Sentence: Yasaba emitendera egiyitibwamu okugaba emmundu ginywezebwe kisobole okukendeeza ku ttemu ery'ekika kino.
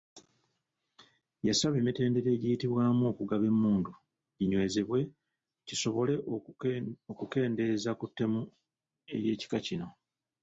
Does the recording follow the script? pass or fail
pass